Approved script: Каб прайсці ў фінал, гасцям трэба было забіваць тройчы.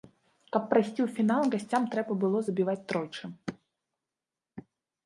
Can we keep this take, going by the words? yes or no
yes